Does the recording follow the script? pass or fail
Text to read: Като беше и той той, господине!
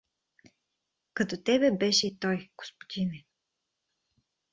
fail